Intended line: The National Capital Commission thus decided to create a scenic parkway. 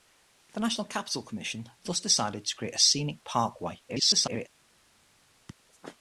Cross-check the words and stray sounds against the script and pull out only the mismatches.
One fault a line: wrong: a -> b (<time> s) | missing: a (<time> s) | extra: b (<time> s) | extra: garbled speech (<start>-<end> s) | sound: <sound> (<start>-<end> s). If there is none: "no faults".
extra: garbled speech (3.9-4.5 s)